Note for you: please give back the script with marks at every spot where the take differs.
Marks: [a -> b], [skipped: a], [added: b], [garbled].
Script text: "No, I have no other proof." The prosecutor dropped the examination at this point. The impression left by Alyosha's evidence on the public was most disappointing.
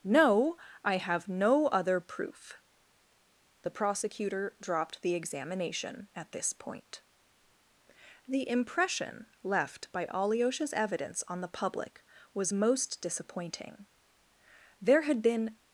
"No, I have no other proof." The prosecutor dropped the examination at this point. The impression left by Alyosha's evidence on the public was most disappointing. [added: There had been]